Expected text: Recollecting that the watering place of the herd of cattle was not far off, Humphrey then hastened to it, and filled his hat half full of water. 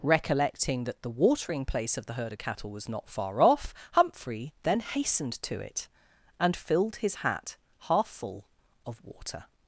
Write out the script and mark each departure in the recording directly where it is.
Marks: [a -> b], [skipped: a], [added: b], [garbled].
Recollecting that the watering place of the herd of cattle was not far off, Humphrey then hastened to it, and filled his hat half full of water.